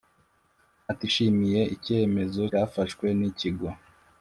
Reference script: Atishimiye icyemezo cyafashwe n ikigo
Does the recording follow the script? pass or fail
pass